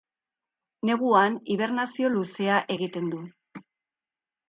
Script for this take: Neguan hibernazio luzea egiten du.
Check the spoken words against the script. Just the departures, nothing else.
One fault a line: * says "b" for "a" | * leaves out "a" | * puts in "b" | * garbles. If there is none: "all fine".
all fine